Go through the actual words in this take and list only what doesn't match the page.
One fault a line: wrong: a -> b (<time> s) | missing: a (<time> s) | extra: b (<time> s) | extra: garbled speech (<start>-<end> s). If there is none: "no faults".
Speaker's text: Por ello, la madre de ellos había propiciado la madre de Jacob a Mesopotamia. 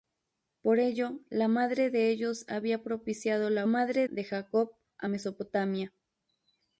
no faults